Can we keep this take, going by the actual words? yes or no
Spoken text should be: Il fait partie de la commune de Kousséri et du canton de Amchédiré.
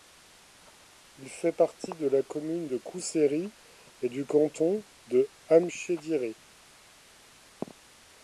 yes